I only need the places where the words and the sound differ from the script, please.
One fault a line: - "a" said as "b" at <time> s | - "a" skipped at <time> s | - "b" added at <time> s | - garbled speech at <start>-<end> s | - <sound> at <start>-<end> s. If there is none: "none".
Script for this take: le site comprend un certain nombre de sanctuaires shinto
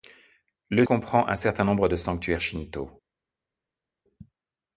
- "site" skipped at 0.8 s